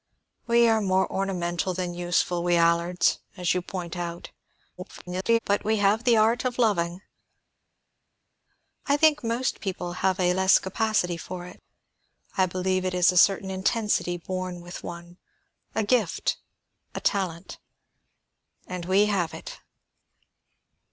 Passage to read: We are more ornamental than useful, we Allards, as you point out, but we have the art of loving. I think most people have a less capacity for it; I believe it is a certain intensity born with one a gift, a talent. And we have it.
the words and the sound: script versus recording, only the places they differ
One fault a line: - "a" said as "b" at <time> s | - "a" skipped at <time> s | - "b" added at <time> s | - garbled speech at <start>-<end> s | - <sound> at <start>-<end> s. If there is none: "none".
- garbled speech at 4.8-5.4 s